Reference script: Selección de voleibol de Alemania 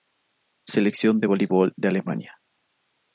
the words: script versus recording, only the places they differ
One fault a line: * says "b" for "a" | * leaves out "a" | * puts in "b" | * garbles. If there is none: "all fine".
all fine